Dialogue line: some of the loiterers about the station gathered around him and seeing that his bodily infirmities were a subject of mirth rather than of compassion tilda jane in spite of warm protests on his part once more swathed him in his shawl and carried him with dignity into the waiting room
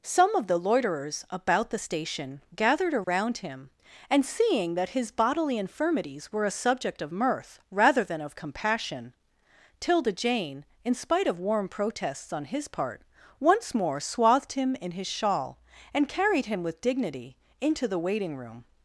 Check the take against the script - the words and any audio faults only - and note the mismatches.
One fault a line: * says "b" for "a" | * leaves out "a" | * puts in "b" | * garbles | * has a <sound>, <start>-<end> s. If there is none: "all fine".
* has a dropout, 3.0-3.1 s